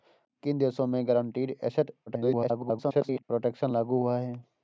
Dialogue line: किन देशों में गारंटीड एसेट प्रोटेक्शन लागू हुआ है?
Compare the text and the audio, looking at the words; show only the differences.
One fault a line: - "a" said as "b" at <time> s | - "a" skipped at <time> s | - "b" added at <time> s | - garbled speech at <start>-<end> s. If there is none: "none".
- garbled speech at 2.1-3.2 s